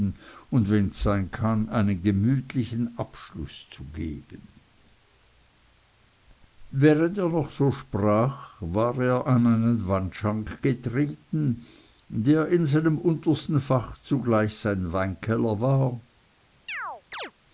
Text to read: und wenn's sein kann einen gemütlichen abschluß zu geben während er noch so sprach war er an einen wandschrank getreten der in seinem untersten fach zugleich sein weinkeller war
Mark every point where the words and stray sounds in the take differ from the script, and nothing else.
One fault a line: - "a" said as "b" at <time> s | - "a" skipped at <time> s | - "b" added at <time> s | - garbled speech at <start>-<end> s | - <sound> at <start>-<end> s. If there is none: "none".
- chirp at 16.7-17.3 s